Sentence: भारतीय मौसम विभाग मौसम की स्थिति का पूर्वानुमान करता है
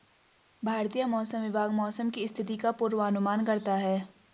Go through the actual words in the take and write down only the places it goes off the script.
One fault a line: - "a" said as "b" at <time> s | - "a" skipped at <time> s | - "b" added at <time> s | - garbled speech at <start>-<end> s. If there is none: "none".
none